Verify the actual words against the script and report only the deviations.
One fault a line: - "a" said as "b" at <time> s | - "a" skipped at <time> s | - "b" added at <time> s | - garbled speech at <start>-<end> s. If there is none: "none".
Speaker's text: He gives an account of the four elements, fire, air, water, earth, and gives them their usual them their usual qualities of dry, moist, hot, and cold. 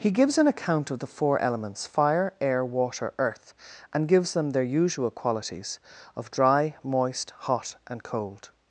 - "them their usual" skipped at 5.1 s